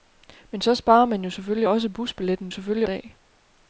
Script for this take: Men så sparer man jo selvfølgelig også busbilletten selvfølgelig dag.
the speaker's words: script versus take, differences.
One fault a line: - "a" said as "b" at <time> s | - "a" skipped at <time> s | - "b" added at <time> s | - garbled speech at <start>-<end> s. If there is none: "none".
none